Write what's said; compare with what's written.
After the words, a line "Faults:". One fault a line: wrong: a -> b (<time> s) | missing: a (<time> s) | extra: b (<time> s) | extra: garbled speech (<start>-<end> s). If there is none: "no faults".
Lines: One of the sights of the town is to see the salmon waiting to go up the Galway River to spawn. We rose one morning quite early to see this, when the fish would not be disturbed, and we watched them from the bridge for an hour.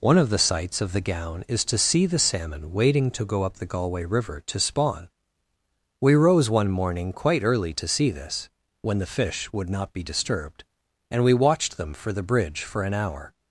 One of the sights of the gown is to see the salmon waiting to go up the Galway River to spawn. We rose one morning quite early to see this, when the fish would not be disturbed, and we watched them for the bridge for an hour.
Faults:
wrong: town -> gown (1.0 s)
wrong: from -> for (11.9 s)